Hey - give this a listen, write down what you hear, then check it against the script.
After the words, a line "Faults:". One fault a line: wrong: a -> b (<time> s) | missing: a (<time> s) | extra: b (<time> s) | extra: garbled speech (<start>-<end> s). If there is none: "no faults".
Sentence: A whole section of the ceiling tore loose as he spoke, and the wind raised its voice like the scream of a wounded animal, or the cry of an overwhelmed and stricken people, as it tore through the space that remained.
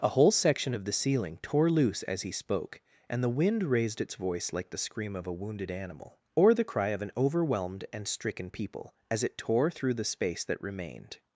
A whole section of the ceiling tore loose as he spoke, and the wind raised its voice like the scream of a wounded animal, or the cry of an overwhelmed and stricken people, as it tore through the space that remained.
Faults:
no faults